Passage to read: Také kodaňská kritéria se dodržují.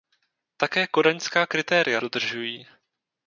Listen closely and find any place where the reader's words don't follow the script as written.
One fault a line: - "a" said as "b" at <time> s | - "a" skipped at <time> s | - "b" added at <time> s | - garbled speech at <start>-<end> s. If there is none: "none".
- "se" skipped at 2.0 s